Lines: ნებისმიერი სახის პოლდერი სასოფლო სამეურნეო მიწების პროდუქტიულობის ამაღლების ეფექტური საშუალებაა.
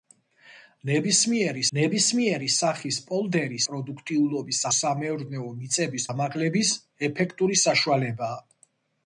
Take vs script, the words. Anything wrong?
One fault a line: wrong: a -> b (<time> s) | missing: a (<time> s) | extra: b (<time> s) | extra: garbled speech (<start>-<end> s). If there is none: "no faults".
extra: ნებისმიერი (1.8 s)
wrong: სასოფლო -> პროდუქტიულობის (3.7 s)
missing: პროდუქტიულობის (6.1 s)